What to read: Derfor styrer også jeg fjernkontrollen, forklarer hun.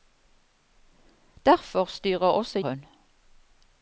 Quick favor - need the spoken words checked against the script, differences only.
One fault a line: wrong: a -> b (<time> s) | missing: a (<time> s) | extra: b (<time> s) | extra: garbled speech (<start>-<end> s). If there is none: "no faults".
missing: jeg fjernkontrollen forklarer (2.6 s)